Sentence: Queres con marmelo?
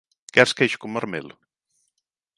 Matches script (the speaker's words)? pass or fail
fail